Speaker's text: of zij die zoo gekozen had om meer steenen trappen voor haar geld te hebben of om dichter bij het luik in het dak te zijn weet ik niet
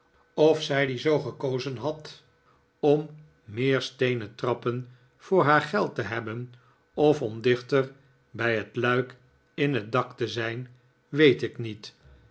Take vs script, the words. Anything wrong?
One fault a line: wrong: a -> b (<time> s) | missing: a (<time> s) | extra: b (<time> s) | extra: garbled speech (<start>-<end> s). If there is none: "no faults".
no faults